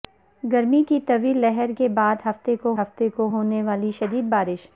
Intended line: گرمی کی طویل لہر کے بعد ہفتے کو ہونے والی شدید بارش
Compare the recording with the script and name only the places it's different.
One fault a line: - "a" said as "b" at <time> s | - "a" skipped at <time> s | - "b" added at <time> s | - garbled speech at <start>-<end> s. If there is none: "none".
- "ہفتے کو" added at 2.8 s